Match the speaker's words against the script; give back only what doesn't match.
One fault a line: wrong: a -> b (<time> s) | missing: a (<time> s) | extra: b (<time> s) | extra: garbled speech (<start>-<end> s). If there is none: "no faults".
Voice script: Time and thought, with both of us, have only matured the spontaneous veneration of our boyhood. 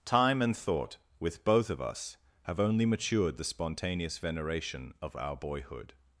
no faults